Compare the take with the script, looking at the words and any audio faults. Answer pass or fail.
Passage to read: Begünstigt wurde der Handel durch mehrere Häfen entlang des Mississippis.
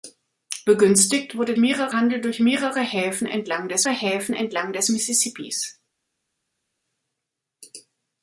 fail